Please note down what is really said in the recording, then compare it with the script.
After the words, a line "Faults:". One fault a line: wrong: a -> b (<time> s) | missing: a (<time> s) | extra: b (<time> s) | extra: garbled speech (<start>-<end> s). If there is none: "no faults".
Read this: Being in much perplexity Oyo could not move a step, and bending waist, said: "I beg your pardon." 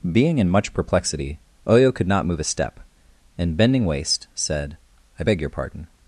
Being in much perplexity Oyo could not move a step, and bending waist, said: "I beg your pardon."
Faults:
no faults